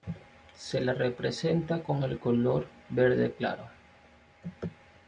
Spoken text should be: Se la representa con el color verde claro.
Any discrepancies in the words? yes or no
no